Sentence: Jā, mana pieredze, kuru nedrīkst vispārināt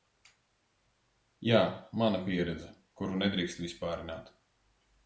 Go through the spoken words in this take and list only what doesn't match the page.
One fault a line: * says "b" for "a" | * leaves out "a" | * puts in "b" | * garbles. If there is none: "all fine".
all fine